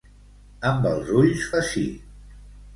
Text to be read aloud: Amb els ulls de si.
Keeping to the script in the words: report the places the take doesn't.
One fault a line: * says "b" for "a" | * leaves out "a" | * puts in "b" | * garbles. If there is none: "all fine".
all fine